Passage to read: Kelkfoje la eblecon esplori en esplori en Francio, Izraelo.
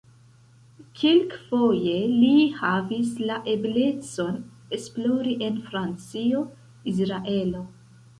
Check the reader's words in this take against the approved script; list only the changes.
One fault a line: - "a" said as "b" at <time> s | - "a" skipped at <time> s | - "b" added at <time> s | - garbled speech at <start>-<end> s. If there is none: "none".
- "li havis" added at 2.2 s
- "esplori en" skipped at 5.6 s